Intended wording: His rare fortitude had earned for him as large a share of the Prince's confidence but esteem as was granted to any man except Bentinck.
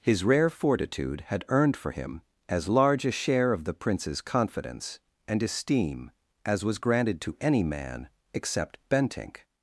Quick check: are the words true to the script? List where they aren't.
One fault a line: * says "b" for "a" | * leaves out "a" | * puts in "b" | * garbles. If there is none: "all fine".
* says "and" for "but"